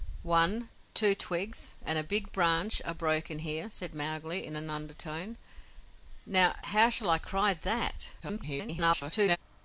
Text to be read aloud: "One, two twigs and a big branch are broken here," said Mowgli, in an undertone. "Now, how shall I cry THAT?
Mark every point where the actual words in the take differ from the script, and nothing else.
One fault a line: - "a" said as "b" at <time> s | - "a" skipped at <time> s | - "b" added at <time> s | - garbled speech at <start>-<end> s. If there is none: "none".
- garbled speech at 8.2-9.4 s